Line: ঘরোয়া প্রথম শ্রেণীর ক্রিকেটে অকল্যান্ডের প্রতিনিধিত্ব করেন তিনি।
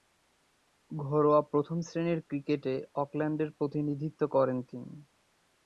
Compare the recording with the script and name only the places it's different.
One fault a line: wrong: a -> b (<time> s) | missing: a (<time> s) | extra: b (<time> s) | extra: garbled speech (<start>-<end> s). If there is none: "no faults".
no faults